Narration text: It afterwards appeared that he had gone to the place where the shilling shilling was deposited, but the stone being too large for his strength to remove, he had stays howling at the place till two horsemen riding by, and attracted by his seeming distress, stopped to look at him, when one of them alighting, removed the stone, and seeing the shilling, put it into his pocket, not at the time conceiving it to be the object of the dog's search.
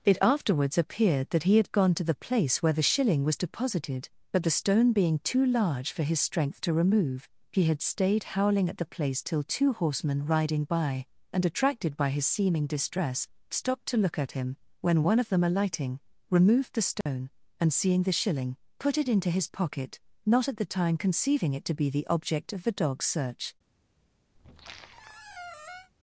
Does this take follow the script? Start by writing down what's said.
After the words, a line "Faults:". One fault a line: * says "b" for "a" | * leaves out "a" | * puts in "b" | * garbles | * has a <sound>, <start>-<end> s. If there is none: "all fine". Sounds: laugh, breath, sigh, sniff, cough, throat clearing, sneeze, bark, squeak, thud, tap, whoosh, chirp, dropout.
It afterwards appeared that he had gone to the place where the shilling was deposited, but the stone being too large for his strength to remove, he had stayed howling at the place till two horsemen riding by, and attracted by his seeming distress, stopped to look at him, when one of them alighting, removed the stone, and seeing the shilling, put it into his pocket, not at the time conceiving it to be the object of the dog's search.
Faults:
* leaves out "shilling"
* says "stayed" for "stays"
* has a dropout, 17.0-17.1 s
* has a squeak, 24.4-25.9 s